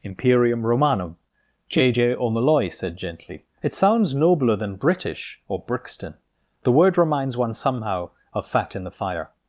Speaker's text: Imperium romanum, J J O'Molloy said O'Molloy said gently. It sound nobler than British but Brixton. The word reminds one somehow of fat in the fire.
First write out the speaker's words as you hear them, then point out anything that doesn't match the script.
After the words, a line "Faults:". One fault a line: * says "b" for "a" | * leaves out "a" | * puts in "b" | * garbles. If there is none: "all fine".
Imperium romanum, J J O'Molloy said gently. It sounds nobler than British or Brixton. The word reminds one somehow of fat in the fire.
Faults:
* leaves out "O'Molloy said"
* says "sounds" for "sound"
* says "or" for "but"